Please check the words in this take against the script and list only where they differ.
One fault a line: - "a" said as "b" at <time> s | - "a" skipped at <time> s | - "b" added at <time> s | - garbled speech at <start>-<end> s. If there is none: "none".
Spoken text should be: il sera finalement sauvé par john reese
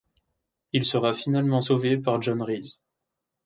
none